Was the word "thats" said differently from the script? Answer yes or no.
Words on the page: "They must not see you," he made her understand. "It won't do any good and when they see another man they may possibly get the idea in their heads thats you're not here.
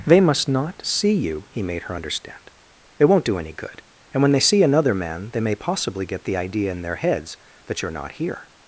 yes